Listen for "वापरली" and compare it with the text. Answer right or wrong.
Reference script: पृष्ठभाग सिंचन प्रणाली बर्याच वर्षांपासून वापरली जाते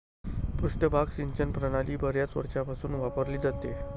right